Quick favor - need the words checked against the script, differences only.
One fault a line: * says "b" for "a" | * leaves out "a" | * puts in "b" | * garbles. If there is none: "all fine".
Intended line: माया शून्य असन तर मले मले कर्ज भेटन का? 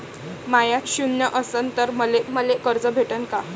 all fine